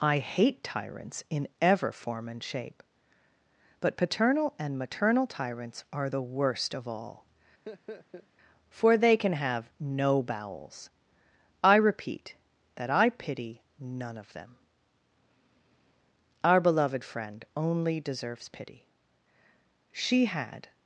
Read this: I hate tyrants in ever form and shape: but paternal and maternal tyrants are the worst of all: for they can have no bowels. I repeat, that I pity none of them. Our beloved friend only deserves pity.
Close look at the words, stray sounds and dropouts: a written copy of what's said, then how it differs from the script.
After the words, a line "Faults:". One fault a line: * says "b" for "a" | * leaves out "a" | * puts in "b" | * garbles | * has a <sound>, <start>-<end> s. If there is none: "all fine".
I hate tyrants in ever form and shape: but paternal and maternal tyrants are the worst of all: for they can have no bowels. I repeat, that I pity none of them. Our beloved friend only deserves pity. She had
Faults:
* has a laugh, 7.7-8.3 s
* puts in "She had"